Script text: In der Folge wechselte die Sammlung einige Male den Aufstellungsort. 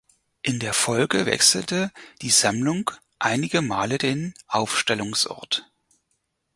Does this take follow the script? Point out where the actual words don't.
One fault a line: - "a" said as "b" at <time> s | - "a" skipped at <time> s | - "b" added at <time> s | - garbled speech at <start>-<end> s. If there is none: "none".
none